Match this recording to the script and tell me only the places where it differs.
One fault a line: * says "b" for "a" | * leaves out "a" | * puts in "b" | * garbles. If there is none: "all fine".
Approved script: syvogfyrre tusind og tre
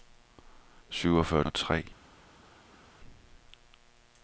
* leaves out "tusind"